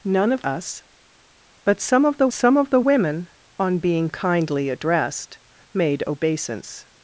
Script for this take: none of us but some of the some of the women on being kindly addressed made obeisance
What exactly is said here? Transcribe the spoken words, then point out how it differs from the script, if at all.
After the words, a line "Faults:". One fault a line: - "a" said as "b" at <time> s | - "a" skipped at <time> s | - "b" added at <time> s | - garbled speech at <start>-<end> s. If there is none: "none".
none of us but some of the some of the women on being kindly addressed made obeisance
Faults:
none